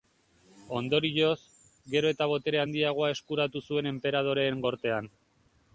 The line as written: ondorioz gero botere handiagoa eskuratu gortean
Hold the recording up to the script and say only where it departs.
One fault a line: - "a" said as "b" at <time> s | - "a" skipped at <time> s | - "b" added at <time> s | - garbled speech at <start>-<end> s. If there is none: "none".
- "eta" added at 2.1 s
- "zuen enperadoreen" added at 3.7 s